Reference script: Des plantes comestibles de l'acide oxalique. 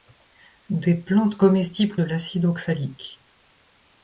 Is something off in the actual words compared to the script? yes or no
no